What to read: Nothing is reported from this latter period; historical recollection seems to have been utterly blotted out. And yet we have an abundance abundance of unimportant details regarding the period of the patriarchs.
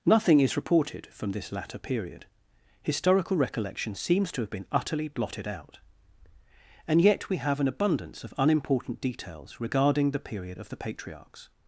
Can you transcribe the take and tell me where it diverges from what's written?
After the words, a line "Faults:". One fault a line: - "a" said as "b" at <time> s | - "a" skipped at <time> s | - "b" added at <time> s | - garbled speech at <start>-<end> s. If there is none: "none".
Nothing is reported from this latter period; historical recollection seems to have been utterly blotted out. And yet we have an abundance of unimportant details regarding the period of the patriarchs.
Faults:
- "abundance" skipped at 8.2 s